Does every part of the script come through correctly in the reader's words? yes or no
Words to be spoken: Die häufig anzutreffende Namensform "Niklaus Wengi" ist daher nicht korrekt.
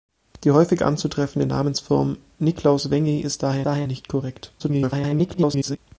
no